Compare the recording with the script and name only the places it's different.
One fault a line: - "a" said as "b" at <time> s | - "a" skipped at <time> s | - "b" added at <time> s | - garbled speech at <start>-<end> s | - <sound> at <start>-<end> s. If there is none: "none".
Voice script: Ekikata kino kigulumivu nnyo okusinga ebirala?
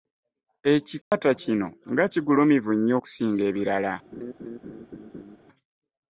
- dropout at 1.0-1.1 s
- "nga" added at 1.9 s
- laugh at 4.1-5.4 s